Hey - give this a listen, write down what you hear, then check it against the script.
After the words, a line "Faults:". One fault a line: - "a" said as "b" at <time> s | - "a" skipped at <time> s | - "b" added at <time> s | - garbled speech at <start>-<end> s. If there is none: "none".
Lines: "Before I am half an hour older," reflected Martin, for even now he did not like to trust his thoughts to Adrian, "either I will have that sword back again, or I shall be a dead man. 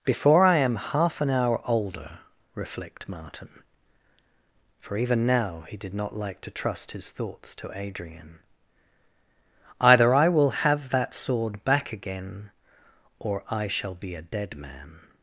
"Before I am half an hour older," reflect Martin, for even now he did not like to trust his thoughts to Adrian, "either I will have that sword back again, or I shall be a dead man.
Faults:
- "reflected" said as "reflect" at 2.5 s